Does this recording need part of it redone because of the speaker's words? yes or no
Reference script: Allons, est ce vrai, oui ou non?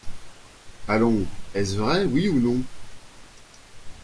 no